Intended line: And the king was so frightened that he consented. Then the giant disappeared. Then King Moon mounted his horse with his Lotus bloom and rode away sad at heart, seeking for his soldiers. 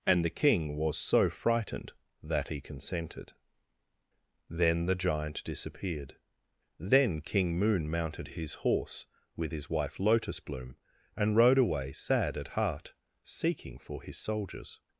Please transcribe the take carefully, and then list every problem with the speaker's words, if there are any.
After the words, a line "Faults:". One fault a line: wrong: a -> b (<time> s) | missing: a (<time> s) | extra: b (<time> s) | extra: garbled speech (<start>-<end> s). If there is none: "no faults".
And the king was so frightened that he consented. Then the giant disappeared. Then King Moon mounted his horse with his wife Lotus bloom and rode away sad at heart, seeking for his soldiers.
Faults:
extra: wife (9.7 s)